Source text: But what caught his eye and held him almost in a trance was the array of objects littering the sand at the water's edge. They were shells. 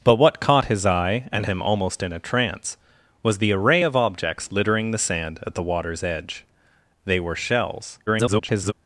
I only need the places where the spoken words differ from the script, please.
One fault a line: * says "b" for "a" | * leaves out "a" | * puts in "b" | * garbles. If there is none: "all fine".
* leaves out "held"
* garbles